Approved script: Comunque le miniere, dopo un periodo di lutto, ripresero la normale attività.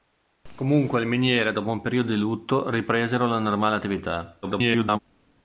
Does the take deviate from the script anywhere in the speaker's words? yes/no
yes